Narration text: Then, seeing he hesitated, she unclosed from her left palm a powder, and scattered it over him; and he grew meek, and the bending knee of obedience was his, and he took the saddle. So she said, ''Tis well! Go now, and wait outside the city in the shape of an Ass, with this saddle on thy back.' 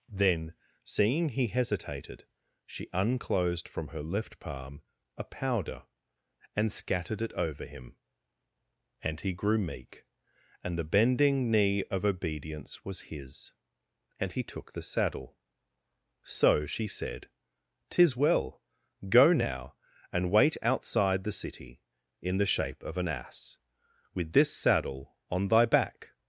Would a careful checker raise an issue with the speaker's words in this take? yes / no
no